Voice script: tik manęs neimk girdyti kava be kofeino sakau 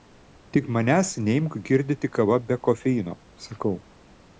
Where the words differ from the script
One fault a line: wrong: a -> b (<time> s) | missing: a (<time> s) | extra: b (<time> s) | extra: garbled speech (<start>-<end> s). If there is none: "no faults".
no faults